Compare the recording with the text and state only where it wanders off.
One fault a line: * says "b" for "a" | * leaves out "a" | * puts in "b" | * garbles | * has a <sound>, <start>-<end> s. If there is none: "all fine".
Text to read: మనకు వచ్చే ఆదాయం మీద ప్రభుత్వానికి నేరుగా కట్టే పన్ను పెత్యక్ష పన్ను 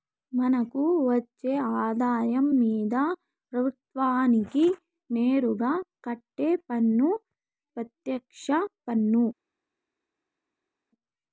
all fine